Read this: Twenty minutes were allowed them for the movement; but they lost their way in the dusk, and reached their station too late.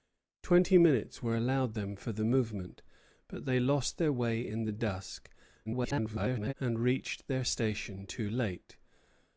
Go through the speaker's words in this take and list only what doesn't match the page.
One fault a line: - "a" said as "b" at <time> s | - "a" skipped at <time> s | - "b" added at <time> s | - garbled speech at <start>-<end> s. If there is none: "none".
- garbled speech at 5.7-6.5 s